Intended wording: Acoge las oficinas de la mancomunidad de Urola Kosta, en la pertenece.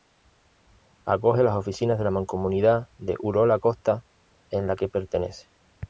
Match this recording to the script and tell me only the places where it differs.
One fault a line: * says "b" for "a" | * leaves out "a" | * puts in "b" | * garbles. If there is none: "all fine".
* puts in "que"